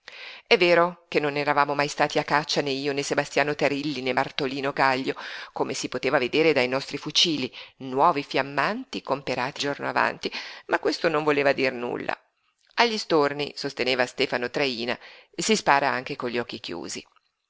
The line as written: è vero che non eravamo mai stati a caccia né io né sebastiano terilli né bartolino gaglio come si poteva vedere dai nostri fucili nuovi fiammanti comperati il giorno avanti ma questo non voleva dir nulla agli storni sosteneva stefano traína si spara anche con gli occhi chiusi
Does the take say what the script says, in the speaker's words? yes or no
no